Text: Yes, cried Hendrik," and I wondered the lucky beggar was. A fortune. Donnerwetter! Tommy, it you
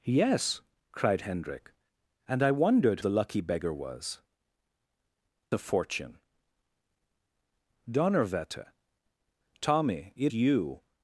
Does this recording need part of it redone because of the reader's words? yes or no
no